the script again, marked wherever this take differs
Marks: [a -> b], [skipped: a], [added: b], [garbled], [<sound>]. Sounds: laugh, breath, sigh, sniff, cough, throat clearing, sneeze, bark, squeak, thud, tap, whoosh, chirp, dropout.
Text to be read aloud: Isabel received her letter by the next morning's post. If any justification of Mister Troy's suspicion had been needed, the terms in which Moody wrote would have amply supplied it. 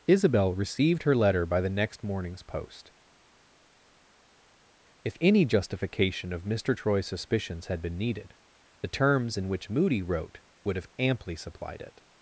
Isabel received her letter by the next morning's post. If any justification of Mister Troy's [suspicion -> suspicions] had been needed, the terms in which Moody wrote would have amply supplied it.